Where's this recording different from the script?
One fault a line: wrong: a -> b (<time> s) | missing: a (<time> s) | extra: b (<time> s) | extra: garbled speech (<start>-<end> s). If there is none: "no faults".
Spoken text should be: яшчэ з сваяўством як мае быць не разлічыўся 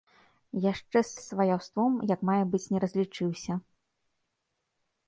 extra: з (1.1 s)